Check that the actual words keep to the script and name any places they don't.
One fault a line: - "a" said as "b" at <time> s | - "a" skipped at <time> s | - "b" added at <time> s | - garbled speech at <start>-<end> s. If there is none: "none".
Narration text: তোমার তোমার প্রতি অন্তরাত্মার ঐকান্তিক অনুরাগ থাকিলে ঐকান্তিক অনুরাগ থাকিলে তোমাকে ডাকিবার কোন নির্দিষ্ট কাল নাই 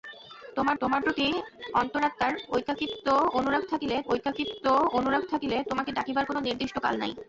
none